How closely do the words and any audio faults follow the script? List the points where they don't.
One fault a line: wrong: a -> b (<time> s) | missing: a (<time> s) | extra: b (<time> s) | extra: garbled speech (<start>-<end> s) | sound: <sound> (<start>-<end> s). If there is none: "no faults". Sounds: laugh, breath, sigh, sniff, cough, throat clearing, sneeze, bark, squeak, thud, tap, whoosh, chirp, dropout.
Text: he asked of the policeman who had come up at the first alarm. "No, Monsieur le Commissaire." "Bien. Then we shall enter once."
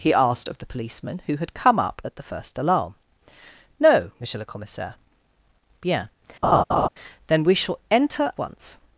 sound: laugh (6.4-6.9 s)